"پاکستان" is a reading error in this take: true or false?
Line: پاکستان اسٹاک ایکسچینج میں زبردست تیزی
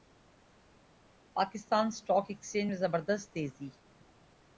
false